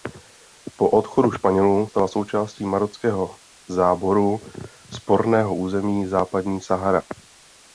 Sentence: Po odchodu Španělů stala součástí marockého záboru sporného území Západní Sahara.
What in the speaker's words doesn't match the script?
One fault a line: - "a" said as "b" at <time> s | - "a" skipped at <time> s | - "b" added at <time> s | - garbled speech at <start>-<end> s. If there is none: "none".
none